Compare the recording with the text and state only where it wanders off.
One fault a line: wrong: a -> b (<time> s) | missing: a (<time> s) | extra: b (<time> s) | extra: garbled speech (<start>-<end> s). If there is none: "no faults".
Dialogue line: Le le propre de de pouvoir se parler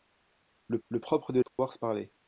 no faults